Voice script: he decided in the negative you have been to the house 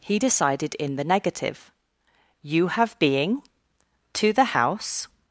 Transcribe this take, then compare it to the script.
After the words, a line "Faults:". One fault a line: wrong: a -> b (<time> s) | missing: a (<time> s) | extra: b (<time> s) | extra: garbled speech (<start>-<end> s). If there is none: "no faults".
he decided in the negative you have being to the house
Faults:
wrong: been -> being (3.0 s)